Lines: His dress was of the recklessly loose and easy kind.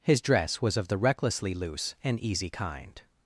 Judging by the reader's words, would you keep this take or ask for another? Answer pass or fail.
pass